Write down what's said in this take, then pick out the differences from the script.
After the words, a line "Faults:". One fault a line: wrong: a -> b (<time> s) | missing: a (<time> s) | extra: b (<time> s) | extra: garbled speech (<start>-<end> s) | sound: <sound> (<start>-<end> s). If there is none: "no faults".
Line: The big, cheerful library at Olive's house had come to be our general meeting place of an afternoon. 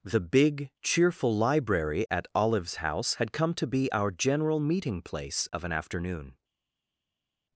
The big, cheerful library at Olive's house had come to be our general meeting place of an afternoon.
Faults:
no faults